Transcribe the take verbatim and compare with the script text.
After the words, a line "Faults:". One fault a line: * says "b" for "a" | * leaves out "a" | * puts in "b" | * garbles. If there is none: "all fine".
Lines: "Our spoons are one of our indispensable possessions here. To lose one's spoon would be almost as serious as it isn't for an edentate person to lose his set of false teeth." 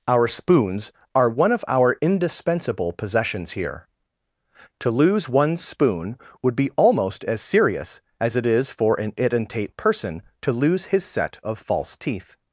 "Our spoons are one of our indispensable possessions here. To lose one's spoon would be almost as serious as it is for an edentate person to lose his set of false teeth."
Faults:
* says "is" for "isn't"